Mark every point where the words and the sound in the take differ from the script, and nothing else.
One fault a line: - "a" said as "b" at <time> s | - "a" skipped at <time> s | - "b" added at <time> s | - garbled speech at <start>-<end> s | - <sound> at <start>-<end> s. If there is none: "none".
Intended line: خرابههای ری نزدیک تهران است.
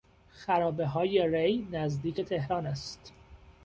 none